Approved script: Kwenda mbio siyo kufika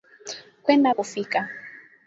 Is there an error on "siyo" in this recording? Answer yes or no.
yes